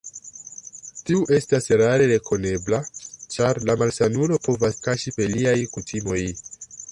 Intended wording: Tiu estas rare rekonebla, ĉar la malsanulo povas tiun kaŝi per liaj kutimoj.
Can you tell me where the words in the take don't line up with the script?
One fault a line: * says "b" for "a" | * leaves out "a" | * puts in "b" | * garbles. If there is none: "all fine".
* leaves out "tiun"